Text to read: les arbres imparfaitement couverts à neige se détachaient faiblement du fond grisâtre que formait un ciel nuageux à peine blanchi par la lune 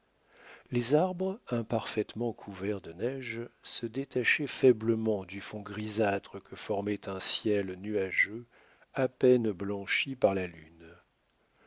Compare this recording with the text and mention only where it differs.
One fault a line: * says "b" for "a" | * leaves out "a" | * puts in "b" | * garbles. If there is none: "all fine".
* says "de" for "à"